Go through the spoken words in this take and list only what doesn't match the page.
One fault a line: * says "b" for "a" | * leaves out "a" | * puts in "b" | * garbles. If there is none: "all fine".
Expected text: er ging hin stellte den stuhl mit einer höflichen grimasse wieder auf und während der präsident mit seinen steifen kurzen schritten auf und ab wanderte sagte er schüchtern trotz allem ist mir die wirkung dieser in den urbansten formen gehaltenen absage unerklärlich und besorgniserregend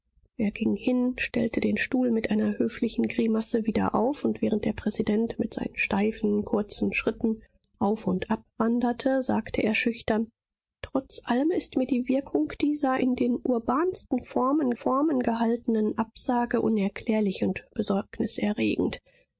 * puts in "formen"